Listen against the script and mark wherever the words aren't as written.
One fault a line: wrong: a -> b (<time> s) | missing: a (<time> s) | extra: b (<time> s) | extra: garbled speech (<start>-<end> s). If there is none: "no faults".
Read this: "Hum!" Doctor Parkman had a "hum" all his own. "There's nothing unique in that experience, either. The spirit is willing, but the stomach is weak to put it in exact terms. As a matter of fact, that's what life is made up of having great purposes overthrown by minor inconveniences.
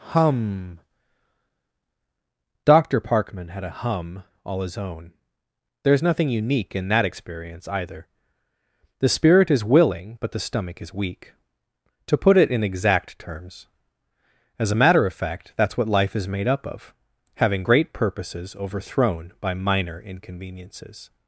no faults